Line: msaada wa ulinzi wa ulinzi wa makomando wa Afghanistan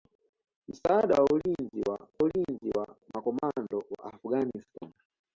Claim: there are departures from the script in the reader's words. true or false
false